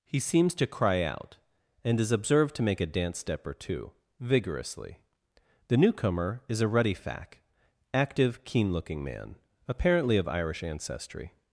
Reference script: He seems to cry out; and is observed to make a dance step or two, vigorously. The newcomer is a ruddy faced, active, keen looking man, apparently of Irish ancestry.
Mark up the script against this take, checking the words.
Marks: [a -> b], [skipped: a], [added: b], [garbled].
He seems to cry out; and is observed to make a dance step or two, vigorously. The newcomer is a ruddy [faced, -> fac] active, keen looking man, apparently of Irish ancestry.